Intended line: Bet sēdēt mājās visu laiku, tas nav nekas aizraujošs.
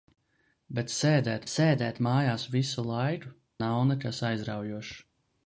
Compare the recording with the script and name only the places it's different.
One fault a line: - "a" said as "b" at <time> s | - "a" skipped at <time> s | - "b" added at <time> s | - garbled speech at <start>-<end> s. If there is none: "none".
- "sēdēt" added at 1.5 s
- "tas" skipped at 3.3 s